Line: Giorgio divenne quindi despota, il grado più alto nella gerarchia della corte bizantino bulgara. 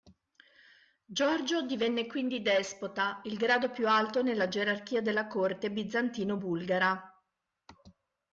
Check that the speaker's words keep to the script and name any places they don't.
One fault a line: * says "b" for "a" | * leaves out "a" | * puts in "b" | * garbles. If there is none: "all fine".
all fine